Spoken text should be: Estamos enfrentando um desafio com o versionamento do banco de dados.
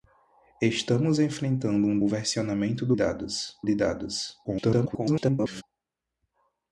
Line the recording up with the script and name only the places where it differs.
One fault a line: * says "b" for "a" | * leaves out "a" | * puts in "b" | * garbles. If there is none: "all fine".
* leaves out "desafio com"
* says "dados" for "banco"
* garbles